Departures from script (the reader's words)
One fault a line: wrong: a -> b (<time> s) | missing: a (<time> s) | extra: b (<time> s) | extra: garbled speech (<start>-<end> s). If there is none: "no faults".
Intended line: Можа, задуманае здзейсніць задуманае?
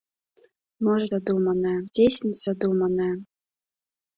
no faults